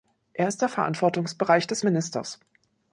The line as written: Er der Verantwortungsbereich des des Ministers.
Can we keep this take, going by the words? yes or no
no